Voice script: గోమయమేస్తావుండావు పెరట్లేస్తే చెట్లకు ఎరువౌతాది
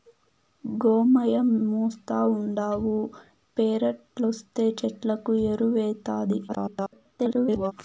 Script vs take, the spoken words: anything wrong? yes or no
yes